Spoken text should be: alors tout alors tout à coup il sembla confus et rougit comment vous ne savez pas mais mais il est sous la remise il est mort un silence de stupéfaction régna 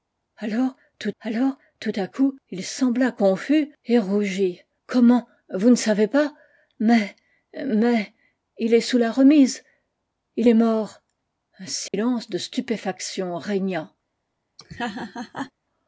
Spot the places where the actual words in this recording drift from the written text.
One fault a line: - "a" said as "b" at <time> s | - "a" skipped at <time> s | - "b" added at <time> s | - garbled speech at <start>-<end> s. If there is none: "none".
none